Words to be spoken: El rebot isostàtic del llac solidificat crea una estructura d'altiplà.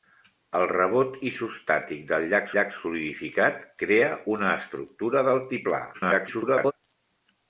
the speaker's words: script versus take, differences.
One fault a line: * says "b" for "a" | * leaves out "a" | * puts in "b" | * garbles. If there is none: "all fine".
* puts in "llac"
* garbles